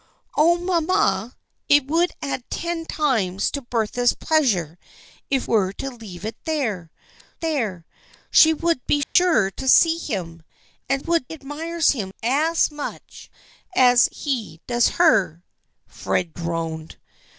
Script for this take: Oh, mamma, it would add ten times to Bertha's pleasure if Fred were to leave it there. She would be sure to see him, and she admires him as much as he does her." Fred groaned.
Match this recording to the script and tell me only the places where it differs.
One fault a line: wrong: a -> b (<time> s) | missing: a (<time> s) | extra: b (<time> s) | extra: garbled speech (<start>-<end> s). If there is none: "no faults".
missing: Fred (5.4 s)
extra: there (7.4 s)
wrong: she -> would (11.0 s)